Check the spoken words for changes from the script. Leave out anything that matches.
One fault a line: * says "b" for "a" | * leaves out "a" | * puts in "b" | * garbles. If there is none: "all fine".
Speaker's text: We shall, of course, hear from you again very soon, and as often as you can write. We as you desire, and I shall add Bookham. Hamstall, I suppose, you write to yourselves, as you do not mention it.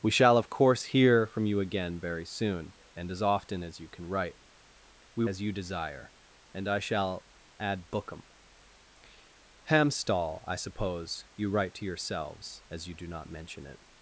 all fine